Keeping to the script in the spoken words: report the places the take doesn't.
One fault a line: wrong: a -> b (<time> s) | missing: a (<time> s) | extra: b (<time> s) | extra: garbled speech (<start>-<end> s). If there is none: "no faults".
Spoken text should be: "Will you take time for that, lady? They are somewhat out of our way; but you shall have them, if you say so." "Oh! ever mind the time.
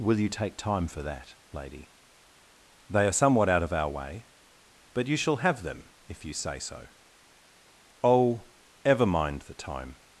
no faults